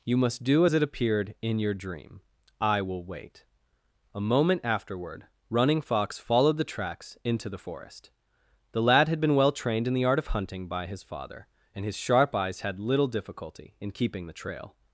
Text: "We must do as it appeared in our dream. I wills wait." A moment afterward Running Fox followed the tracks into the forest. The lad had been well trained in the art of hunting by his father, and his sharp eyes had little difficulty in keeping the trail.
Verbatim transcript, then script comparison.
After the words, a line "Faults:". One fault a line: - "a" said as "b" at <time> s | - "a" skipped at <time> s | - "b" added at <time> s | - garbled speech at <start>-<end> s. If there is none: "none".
"You must do as it appeared in your dream. I will wait." A moment afterward Running Fox followed the tracks into the forest. The lad had been well trained in the art of hunting by his father, and his sharp eyes had little difficulty in keeping the trail.
Faults:
- "We" said as "You" at 0.0 s
- "our" said as "your" at 1.6 s
- "wills" said as "will" at 2.8 s